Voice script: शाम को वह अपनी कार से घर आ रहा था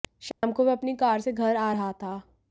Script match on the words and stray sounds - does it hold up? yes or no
no